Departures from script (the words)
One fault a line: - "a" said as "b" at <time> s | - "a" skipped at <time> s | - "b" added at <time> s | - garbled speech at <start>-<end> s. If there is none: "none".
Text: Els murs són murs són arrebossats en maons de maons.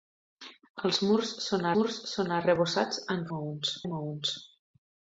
none